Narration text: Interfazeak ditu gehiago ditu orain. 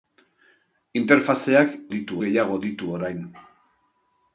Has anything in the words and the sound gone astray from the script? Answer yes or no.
no